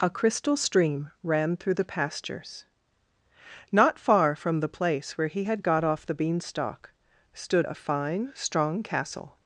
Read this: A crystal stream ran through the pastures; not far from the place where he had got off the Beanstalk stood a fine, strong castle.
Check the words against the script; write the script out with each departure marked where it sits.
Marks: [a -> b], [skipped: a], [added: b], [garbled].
A crystal stream ran through the pastures; not far from the place where he had got off the Beanstalk stood a fine, strong castle.